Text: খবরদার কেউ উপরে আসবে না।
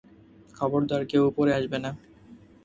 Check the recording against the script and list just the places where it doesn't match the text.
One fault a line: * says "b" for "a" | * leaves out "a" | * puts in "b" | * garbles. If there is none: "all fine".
all fine